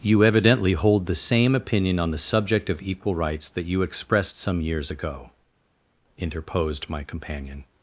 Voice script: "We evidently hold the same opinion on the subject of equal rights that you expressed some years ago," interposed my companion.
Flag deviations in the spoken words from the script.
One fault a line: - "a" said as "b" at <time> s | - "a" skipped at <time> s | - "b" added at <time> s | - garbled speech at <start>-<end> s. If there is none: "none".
- "We" said as "You" at 0.0 s